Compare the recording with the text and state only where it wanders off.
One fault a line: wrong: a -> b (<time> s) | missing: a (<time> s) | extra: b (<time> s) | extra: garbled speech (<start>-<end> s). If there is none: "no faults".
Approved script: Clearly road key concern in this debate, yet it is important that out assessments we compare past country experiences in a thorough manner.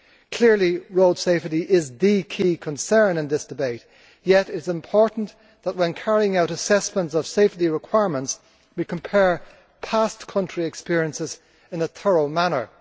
extra: safety is the (1.2 s)
extra: when carrying (5.8 s)
extra: of safety requirements (7.1 s)